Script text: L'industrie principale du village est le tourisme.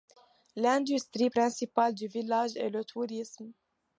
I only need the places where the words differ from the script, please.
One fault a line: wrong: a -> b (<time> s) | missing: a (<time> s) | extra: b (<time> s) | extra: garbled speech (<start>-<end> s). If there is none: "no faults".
no faults